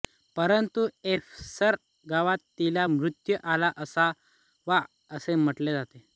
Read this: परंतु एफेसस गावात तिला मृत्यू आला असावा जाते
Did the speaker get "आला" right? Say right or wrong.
right